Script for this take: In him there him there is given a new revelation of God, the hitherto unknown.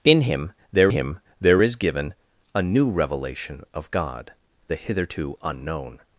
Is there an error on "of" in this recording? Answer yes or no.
no